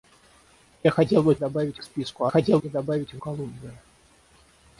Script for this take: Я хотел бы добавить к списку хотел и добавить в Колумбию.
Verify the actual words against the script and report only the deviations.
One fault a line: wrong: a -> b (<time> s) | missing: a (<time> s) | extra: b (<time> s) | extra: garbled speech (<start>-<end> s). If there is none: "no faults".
no faults